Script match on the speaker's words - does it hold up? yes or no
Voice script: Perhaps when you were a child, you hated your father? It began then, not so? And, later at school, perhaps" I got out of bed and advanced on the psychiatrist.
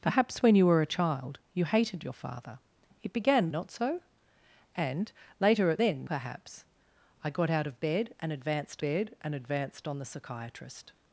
no